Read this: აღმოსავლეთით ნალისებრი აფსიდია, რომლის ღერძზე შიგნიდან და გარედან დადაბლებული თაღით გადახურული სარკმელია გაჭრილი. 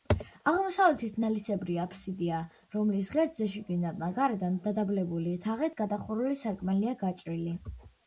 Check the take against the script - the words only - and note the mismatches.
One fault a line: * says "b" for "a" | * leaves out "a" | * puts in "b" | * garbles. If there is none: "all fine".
all fine